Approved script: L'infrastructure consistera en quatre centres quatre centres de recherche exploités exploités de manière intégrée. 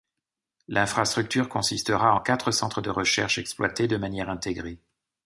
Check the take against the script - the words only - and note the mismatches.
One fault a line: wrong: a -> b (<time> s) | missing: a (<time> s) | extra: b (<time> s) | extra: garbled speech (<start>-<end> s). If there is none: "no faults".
missing: quatre centres (2.8 s)
missing: exploités (3.9 s)